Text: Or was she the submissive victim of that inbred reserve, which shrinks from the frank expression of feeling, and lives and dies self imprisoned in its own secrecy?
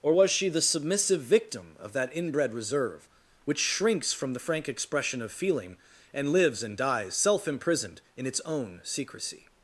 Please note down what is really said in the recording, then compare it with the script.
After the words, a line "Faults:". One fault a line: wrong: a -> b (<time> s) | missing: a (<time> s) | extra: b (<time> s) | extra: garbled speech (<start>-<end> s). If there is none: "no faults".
Or was she the submissive victim of that inbred reserve, which shrinks from the frank expression of feeling, and lives and dies self imprisoned in its own secrecy?
Faults:
no faults